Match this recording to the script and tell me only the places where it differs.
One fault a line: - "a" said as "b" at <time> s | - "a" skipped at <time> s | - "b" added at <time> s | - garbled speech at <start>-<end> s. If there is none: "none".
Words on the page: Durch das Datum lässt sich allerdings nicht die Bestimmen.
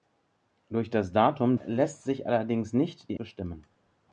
none